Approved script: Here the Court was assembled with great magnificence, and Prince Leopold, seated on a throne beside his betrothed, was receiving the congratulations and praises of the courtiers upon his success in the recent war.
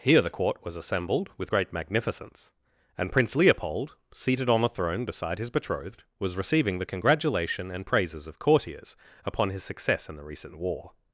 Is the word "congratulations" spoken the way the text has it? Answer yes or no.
no